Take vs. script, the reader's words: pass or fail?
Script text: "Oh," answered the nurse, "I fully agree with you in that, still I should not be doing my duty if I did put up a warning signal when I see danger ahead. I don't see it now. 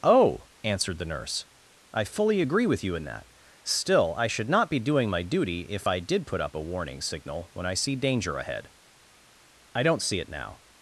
pass